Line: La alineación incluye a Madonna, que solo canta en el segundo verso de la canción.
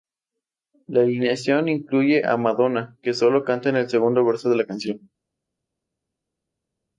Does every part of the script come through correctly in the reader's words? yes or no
yes